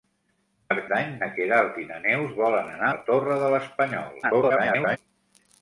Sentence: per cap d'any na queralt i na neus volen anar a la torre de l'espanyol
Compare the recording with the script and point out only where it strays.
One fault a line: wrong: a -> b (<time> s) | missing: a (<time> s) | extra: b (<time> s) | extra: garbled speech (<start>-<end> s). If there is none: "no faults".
missing: cap (0.8 s)
missing: a (2.9 s)
extra: garbled speech (4.2-5.0 s)